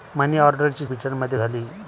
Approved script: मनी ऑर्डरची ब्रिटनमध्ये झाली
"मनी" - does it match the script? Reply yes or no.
yes